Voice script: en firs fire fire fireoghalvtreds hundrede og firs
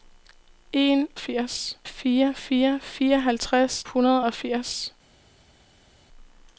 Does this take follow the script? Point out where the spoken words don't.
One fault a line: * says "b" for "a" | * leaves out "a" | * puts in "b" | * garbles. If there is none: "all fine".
all fine